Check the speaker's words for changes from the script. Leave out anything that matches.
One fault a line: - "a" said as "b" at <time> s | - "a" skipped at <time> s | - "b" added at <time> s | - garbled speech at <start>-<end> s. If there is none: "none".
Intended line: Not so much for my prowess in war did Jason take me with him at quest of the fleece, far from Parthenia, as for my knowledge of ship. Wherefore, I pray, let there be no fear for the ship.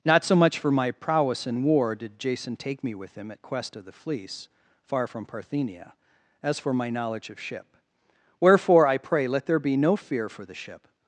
none